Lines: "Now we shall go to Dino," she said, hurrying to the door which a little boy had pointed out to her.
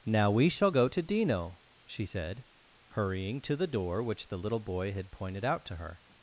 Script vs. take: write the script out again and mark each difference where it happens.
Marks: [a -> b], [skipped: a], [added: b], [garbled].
"Now we shall go to Dino," she said, hurrying to the door which [a -> the] little boy had pointed out to her.